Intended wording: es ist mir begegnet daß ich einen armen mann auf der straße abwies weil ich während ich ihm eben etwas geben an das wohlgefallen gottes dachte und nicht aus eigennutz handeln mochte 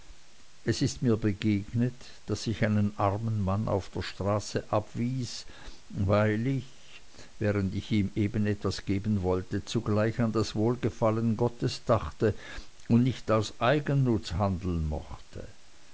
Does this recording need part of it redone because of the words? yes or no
yes